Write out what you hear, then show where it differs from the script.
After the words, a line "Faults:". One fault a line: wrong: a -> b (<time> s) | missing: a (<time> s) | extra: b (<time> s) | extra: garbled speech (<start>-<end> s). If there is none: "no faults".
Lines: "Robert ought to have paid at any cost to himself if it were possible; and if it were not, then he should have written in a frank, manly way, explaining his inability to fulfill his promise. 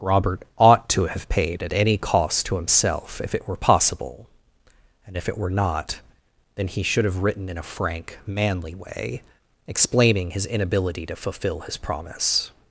"Robert ought to have paid at any cost to himself if it were possible; and if it were not, then he should have written in a frank, manly way, explaining his inability to fulfill his promise.
Faults:
no faults